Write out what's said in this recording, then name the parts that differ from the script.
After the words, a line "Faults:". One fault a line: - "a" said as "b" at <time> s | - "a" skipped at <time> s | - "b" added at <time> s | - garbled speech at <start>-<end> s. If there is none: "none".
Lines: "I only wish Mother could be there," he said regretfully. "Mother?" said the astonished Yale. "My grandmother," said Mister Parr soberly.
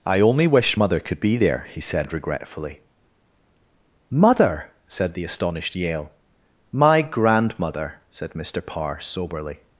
"I only wish Mother could be there," he said regretfully. "Mother?" said the astonished Yale. "My grandmother," said Mister Parr soberly.
Faults:
none